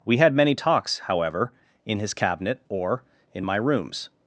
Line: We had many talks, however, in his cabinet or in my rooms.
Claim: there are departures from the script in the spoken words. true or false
false